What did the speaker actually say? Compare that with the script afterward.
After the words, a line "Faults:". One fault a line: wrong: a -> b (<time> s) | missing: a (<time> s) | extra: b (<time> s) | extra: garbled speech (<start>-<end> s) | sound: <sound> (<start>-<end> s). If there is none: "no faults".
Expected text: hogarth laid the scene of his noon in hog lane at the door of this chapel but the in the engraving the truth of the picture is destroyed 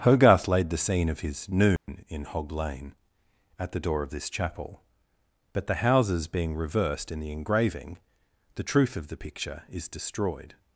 hogarth laid the scene of his noon in hog lane at the door of this chapel but the houses being reversed in the engraving the truth of the picture is destroyed
Faults:
sound: dropout (1.8-1.9 s)
extra: houses being reversed (5.8 s)